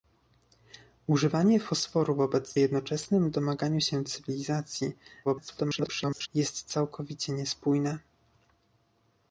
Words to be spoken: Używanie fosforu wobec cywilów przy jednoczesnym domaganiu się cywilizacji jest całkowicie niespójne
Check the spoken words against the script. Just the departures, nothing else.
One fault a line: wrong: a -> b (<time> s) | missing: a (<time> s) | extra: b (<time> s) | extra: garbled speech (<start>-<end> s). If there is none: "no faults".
missing: cywilów przy (2.5 s)
extra: garbled speech (5.2-6.3 s)